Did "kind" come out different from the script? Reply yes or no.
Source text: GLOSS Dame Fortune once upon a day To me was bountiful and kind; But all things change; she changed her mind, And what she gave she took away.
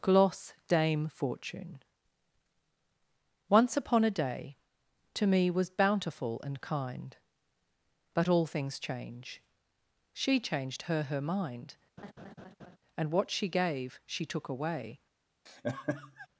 no